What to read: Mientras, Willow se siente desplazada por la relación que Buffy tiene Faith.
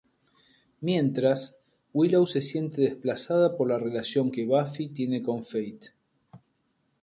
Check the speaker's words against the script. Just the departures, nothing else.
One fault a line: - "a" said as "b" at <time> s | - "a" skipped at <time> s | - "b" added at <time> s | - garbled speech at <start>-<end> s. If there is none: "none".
- "con" added at 5.2 s